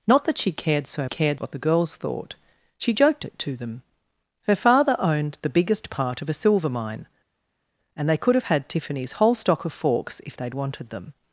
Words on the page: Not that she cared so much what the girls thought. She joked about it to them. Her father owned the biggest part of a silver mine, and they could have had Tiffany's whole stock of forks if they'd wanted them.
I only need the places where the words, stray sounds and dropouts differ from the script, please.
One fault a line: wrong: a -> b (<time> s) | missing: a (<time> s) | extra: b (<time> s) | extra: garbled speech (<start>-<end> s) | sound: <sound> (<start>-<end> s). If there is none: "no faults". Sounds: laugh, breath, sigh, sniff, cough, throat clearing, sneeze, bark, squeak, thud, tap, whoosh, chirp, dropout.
wrong: much -> cared (1.0 s)
missing: about (3.3 s)